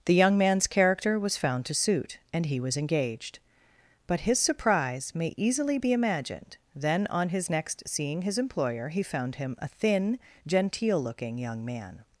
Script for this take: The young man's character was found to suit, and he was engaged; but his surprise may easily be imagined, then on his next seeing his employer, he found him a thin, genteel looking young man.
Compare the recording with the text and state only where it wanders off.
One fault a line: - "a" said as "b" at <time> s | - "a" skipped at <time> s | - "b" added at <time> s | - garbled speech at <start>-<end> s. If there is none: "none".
none